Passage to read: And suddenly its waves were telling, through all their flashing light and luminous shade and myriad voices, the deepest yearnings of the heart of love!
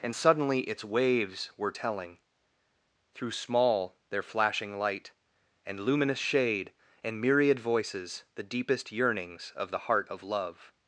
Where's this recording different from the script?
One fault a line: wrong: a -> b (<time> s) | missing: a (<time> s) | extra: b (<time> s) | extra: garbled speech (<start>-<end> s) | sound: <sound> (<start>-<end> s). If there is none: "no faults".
wrong: all -> small (3.3 s)